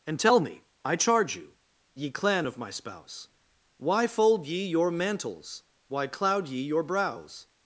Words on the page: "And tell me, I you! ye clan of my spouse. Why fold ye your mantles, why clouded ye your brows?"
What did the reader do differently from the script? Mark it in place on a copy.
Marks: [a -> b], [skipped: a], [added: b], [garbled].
"And tell me, I [added: charge] you! ye clan of my spouse. Why fold ye your mantles, why [clouded -> cloud] ye your brows?"